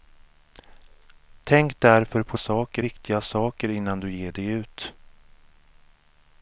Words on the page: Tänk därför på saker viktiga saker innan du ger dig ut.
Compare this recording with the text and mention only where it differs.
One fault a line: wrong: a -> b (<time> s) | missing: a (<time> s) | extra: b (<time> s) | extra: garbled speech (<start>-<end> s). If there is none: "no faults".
no faults